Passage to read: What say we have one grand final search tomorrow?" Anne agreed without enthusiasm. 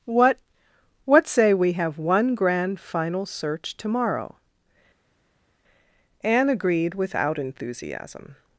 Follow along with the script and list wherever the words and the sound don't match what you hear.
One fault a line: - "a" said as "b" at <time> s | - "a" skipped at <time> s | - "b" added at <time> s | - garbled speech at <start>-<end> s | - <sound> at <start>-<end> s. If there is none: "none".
- "what" added at 1.0 s